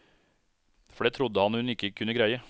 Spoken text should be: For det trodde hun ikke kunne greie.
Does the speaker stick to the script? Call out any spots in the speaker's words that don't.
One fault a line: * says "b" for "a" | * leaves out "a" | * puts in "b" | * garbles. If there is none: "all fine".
* puts in "han"